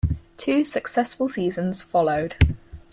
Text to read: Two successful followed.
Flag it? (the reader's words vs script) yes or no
yes